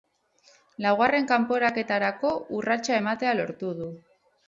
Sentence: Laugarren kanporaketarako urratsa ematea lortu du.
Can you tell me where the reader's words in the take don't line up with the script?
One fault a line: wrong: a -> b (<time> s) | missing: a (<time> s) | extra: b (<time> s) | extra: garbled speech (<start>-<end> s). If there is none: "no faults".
no faults